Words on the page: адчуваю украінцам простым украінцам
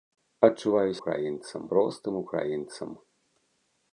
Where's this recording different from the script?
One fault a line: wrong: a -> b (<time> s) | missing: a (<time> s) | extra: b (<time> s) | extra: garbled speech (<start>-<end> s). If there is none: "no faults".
no faults